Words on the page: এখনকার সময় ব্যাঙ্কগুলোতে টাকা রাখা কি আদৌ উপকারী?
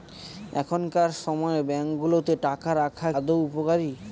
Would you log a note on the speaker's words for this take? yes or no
yes